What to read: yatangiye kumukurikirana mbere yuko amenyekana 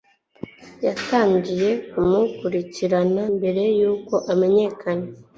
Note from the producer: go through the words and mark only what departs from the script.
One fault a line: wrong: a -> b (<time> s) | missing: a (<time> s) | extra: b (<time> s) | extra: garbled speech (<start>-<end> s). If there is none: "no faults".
no faults